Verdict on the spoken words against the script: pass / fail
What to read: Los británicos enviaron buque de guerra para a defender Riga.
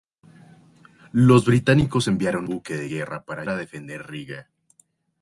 pass